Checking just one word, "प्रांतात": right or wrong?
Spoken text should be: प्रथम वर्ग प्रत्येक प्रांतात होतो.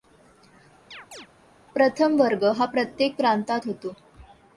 right